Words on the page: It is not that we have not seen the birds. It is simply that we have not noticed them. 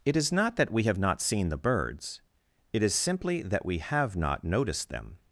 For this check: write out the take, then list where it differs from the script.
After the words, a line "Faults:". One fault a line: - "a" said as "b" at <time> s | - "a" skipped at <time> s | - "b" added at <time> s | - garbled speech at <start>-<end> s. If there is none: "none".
It is not that we have not seen the birds. It is simply that we have not noticed them.
Faults:
none